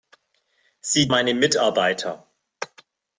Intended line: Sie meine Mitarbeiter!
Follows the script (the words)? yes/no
yes